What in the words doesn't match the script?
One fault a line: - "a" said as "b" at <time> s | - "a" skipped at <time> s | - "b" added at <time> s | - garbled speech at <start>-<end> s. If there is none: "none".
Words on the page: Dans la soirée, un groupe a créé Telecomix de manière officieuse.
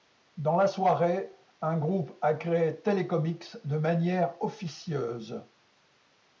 none